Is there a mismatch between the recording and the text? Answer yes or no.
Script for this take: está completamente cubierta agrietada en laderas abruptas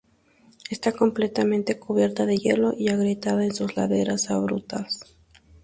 yes